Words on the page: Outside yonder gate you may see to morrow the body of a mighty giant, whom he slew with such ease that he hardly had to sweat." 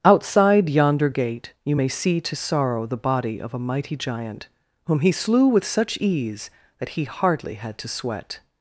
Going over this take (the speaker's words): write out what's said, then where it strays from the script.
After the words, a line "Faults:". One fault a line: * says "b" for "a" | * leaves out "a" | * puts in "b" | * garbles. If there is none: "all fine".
Outside yonder gate you may see to sorrow the body of a mighty giant, whom he slew with such ease that he hardly had to sweat."
Faults:
* says "sorrow" for "morrow"